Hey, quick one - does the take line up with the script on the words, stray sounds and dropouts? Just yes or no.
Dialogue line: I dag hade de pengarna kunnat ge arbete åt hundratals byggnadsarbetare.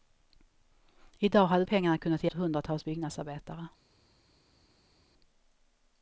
no